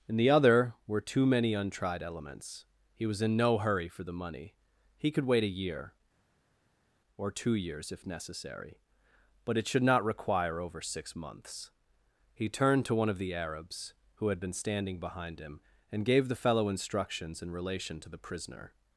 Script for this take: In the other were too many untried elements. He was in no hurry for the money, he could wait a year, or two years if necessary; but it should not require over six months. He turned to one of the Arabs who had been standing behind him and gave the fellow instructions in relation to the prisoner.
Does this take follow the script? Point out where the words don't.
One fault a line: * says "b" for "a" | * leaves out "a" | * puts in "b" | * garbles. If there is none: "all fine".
all fine